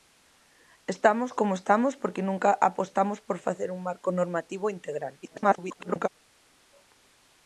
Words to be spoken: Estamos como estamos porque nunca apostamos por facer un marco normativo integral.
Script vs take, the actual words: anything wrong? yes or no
yes